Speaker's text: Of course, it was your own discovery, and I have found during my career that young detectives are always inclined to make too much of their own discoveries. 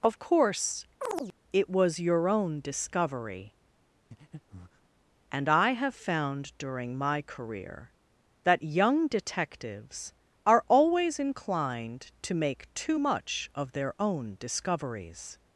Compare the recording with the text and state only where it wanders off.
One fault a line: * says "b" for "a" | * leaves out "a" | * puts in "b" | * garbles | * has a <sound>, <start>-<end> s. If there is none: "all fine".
* has a chirp, 1.0-1.3 s
* has a breath, 4.1-4.9 s